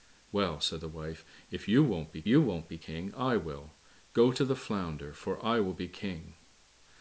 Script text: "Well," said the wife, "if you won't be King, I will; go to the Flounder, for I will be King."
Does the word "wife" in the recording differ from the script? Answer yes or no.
no